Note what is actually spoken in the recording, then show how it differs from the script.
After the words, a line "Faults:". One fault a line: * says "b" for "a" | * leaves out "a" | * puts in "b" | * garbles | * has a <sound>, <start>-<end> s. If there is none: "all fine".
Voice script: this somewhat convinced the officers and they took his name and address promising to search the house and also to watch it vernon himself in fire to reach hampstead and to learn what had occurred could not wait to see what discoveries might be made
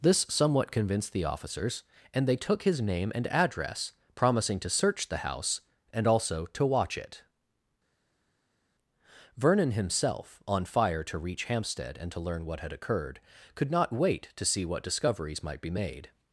this somewhat convinced the officers and they took his name and address promising to search the house and also to watch it vernon himself on fire to reach hampstead and to learn what had occurred could not wait to see what discoveries might be made
Faults:
* says "on" for "in"